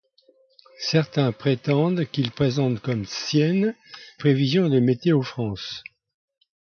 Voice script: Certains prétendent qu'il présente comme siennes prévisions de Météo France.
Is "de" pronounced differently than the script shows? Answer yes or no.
no